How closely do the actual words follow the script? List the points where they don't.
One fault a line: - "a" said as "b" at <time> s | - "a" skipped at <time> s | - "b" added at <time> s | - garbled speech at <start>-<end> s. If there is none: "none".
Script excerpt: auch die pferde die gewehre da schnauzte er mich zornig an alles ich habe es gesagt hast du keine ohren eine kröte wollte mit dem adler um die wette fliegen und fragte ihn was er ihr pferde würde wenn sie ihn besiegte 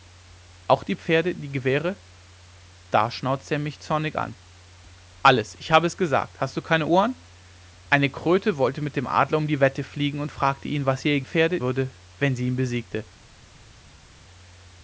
none